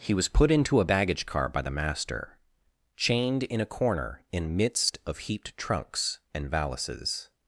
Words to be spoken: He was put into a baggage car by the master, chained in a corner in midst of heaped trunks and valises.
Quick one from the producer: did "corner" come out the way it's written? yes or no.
yes